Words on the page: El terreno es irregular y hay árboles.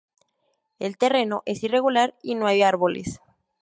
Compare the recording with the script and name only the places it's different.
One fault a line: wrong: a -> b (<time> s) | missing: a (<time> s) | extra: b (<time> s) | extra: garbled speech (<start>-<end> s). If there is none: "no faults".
extra: no (2.3 s)